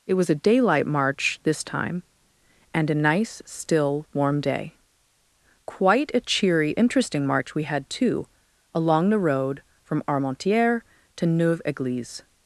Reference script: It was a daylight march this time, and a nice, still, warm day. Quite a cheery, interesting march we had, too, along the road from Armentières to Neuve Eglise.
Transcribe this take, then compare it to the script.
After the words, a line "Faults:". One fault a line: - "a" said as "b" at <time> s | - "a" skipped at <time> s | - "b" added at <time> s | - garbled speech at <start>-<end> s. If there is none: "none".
It was a daylight march this time, and a nice, still, warm day. Quite a cheery, interesting march we had, too, along the road from Armentières to Neuve Eglise.
Faults:
none